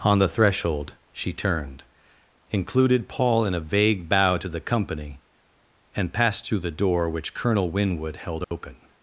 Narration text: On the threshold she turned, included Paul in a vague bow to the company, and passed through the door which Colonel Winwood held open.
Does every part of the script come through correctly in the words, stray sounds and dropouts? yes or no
no